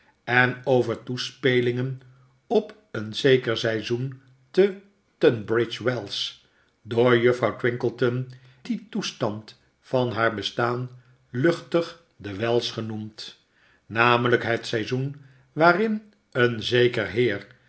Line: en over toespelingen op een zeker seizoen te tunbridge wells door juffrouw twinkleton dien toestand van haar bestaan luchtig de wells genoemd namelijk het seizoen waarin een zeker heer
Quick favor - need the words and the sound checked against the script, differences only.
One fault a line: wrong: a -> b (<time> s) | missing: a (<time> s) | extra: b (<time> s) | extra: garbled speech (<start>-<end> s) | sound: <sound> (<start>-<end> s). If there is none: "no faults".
no faults